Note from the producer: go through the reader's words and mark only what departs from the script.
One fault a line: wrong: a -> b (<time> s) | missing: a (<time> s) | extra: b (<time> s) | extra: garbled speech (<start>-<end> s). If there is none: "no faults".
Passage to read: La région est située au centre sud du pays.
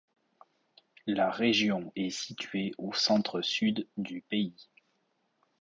no faults